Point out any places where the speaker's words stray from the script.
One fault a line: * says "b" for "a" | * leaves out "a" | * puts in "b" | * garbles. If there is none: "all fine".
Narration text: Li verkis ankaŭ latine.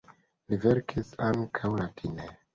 all fine